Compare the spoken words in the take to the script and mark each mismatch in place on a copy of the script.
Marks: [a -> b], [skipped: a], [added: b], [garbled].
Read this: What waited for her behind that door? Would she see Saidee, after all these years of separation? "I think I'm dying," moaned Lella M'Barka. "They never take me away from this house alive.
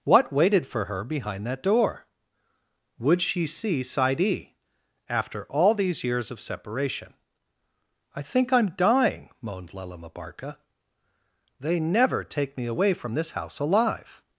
What waited for her behind that door? Would she see Saidee, after all these years of separation? "I think I'm dying," moaned Lella M'Barka. "They never take me away from this house alive.